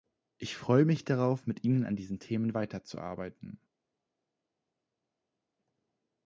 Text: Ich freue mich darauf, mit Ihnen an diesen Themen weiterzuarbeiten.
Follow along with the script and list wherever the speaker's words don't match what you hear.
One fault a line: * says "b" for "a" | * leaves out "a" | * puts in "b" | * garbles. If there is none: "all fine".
all fine